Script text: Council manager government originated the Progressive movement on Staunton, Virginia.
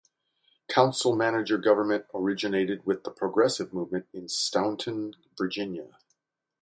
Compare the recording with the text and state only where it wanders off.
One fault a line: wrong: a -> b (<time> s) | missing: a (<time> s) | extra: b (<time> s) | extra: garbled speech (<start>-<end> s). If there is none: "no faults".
extra: with (2.9 s)
wrong: on -> in (4.2 s)